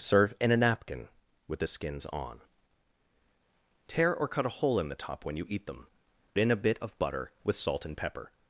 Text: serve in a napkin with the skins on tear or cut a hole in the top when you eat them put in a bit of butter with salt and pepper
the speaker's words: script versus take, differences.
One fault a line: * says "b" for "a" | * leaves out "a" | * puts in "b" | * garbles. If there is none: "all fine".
* leaves out "put"